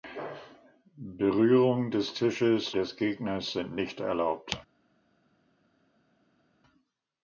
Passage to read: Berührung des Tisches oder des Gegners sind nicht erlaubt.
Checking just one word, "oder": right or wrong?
wrong